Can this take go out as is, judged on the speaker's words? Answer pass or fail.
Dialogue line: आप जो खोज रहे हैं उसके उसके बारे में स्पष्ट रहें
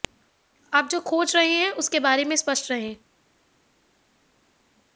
fail